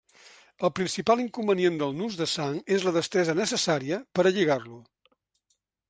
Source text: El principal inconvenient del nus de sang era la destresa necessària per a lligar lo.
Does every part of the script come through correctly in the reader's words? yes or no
no